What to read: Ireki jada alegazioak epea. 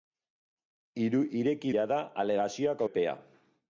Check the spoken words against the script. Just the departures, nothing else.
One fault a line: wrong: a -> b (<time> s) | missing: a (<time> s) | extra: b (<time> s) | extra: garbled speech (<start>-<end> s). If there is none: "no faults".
no faults